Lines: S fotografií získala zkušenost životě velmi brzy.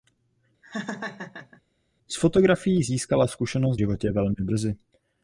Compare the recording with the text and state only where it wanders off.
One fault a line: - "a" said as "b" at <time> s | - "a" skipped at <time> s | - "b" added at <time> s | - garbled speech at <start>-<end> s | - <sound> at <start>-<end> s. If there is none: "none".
- laugh at 0.6-1.6 s